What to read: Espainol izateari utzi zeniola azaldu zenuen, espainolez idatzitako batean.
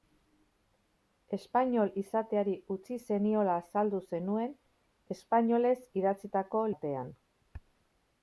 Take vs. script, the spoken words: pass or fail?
pass